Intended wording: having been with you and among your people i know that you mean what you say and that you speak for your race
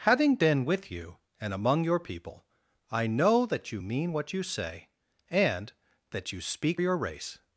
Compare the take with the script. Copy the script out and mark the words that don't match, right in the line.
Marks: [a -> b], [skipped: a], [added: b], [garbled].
having been with you and among your people i know that you mean what you say and that you speak [skipped: for] your race